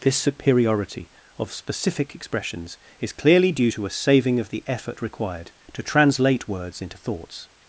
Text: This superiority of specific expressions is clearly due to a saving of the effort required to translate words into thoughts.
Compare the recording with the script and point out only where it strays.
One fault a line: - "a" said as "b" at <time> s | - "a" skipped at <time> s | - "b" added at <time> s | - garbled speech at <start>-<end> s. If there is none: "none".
none